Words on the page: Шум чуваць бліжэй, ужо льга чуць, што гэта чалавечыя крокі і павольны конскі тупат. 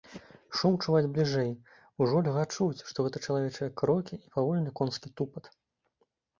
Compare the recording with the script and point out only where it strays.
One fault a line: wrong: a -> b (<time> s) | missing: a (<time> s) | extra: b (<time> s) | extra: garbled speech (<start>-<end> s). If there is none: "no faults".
no faults